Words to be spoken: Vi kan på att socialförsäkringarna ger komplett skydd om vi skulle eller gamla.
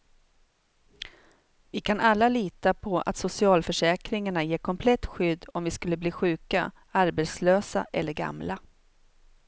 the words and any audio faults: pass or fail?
fail